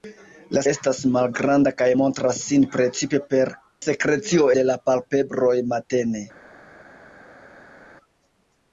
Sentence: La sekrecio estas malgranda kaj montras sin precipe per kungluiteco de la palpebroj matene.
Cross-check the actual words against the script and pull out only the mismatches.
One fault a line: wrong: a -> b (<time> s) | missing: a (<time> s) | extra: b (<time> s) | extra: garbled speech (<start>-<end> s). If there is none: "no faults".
missing: sekrecio (0.6 s)
wrong: kungluiteco -> sekrecio (3.8 s)